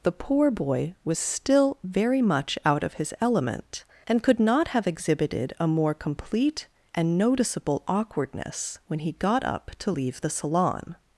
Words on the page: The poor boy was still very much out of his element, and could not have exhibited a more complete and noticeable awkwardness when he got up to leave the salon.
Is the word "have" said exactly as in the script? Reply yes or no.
yes